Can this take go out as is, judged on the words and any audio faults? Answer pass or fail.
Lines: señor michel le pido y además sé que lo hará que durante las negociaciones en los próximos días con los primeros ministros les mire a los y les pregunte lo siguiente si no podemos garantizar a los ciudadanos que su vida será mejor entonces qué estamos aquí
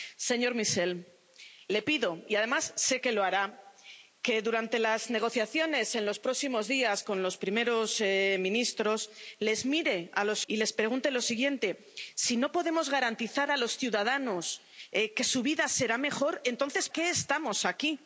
pass